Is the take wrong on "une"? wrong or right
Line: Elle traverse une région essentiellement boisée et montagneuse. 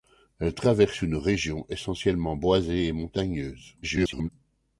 right